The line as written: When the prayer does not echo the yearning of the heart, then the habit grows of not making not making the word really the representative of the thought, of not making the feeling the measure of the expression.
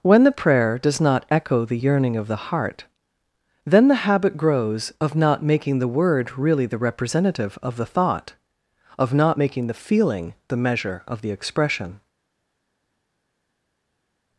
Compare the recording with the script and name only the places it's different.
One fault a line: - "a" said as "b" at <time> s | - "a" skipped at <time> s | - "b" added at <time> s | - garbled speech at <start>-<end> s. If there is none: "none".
- "not making" skipped at 5.8 s